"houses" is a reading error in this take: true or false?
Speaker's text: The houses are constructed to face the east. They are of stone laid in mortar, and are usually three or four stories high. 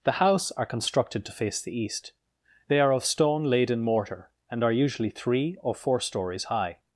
true